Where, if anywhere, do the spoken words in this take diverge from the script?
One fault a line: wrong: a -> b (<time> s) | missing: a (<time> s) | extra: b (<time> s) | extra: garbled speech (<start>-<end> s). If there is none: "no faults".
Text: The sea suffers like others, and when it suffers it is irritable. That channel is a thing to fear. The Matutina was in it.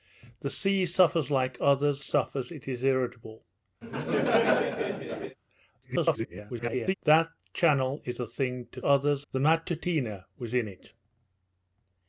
missing: and when it (2.0 s)
extra: garbled speech (5.8-6.9 s)
wrong: fear -> others (8.8 s)